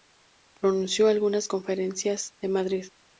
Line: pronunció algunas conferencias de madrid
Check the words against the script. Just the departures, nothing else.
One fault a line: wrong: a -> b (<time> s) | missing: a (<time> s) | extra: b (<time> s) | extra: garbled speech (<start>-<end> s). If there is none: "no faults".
no faults